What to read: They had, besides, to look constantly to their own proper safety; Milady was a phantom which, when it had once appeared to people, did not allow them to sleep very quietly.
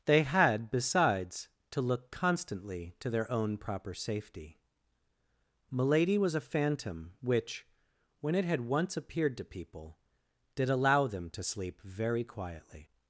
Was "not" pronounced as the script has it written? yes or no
no